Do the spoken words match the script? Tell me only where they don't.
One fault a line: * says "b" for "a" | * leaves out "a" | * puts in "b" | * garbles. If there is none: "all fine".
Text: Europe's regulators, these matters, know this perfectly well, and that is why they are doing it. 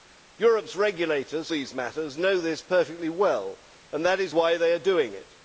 all fine